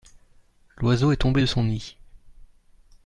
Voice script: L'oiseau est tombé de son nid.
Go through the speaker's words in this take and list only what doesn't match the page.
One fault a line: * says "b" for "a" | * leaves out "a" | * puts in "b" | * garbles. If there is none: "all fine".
all fine